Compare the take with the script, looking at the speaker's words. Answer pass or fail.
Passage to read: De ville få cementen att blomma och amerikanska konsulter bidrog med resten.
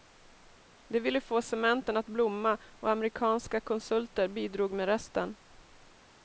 pass